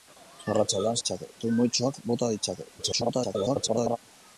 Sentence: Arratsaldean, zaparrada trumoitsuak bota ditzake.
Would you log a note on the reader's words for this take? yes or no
yes